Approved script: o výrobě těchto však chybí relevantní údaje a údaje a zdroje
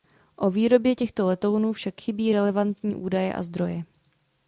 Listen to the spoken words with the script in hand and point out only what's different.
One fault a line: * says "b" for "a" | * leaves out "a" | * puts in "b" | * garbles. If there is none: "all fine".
* puts in "letounů"
* leaves out "údaje a"